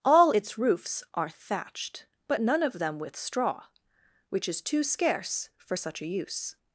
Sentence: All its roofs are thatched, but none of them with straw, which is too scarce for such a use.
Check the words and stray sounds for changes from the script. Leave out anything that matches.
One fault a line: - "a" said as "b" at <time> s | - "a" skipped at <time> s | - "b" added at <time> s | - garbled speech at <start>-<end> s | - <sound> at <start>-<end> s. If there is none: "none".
none